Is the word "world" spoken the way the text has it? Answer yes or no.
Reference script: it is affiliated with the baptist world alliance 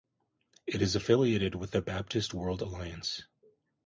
yes